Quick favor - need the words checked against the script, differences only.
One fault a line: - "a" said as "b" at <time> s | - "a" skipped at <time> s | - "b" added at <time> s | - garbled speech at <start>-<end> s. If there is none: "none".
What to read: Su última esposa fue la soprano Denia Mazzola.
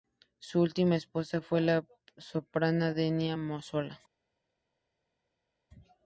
none